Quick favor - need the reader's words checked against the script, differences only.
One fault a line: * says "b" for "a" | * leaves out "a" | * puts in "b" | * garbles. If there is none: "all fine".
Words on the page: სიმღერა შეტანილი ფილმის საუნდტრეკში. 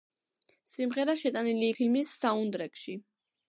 all fine